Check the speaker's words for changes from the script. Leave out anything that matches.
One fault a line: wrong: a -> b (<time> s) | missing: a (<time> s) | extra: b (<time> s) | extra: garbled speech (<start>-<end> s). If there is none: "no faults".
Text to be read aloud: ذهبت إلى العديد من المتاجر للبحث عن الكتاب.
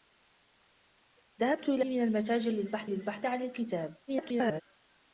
missing: العديد (1.9 s)
extra: للبحث (2.8 s)
extra: garbled speech (4.1-4.6 s)